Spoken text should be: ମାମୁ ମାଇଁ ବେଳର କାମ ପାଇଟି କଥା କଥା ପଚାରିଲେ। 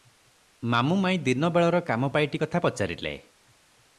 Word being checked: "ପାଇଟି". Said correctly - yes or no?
yes